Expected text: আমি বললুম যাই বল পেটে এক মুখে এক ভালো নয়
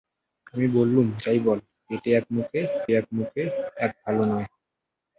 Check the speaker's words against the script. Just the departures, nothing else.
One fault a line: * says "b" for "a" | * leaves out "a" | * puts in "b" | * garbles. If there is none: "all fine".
* puts in "মুখে এক"